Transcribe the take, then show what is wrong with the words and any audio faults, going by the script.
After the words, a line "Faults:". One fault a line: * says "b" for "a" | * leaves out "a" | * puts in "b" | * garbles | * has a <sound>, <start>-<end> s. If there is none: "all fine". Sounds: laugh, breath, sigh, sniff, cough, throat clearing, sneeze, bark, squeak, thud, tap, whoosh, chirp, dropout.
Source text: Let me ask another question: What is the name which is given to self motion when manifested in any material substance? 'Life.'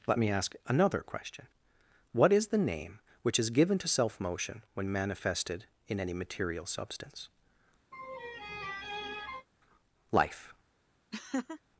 Let me ask another question: What is the name which is given to self motion when manifested in any material substance? 'Life.'
Faults:
* has a laugh, 7.9-9.5 s
* has a laugh, 11.1-11.6 s